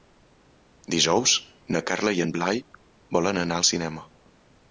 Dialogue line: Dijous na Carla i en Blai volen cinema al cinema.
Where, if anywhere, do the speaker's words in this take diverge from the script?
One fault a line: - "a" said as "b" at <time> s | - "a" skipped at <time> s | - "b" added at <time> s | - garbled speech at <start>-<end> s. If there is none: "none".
- "cinema" said as "anar" at 3.5 s